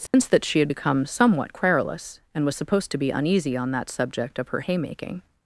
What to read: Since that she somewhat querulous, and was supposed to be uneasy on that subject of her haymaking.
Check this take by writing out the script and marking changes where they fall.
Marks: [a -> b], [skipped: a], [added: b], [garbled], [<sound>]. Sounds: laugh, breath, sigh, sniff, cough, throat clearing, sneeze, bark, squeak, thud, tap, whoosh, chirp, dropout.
Since [dropout] that she [added: had become] somewhat querulous, and was supposed to be uneasy on that subject of her haymaking.